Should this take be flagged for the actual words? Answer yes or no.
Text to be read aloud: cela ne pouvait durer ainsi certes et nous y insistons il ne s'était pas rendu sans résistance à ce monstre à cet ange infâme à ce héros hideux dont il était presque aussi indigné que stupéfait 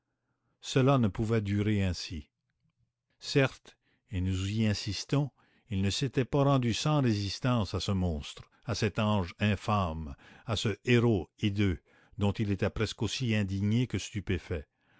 no